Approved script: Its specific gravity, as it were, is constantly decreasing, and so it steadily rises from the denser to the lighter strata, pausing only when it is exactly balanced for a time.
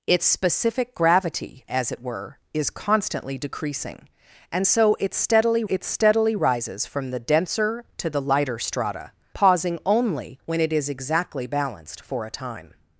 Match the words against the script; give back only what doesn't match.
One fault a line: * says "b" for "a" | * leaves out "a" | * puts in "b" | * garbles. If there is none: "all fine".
* puts in "it steadily"